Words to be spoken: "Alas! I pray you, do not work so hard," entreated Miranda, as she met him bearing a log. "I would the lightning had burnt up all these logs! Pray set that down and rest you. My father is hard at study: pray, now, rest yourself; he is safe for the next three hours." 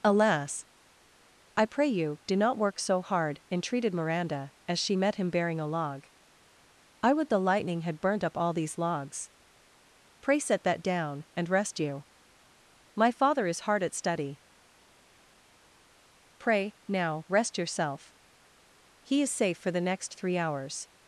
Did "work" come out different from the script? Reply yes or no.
no